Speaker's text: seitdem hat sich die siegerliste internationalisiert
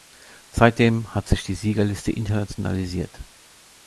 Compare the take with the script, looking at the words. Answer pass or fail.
pass